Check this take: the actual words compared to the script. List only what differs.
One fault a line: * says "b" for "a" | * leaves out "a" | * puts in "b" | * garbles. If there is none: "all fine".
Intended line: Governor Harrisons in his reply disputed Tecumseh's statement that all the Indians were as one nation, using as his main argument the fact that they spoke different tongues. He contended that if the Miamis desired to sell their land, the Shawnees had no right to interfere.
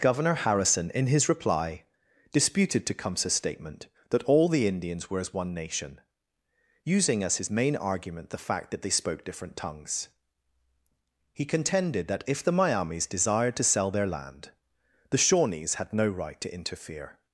* says "Harrison" for "Harrisons"